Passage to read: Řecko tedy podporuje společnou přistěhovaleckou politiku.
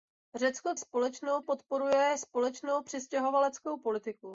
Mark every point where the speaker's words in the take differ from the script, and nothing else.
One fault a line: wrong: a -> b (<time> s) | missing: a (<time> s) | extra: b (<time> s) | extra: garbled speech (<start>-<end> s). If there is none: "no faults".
wrong: tedy -> společnou (0.8 s)